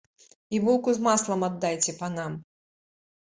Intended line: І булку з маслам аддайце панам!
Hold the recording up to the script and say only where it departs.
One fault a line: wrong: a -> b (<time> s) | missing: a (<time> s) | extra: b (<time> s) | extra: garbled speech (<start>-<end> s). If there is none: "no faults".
no faults